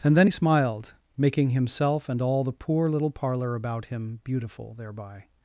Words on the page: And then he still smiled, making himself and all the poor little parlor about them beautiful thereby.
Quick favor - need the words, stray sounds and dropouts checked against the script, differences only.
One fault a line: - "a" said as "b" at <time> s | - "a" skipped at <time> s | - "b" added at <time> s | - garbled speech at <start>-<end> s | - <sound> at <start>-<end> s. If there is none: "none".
- "still" skipped at 0.3 s
- "them" said as "him" at 3.9 s